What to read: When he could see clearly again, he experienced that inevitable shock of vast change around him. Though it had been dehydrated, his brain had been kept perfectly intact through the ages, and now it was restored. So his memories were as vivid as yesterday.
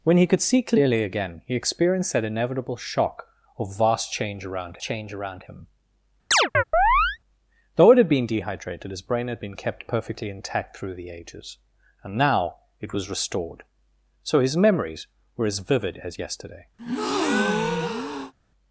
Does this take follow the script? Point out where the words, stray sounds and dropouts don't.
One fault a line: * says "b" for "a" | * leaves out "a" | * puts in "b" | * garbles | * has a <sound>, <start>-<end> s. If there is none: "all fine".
* puts in "change around"
* has a chirp, 6.3-7.2 s
* has a breath, 16.8-18.3 s